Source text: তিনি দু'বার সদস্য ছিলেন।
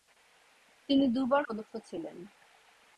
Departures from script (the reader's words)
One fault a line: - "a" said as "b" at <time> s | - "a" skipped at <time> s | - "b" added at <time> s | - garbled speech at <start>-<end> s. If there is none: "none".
none